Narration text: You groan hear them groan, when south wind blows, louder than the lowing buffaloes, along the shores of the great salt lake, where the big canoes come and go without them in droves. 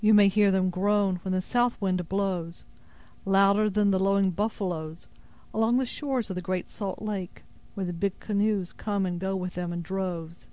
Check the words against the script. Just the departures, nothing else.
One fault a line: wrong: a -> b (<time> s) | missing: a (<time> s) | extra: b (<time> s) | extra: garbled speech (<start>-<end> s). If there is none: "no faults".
wrong: groan -> may (0.1 s)
extra: the (1.3 s)
wrong: without -> with (9.4 s)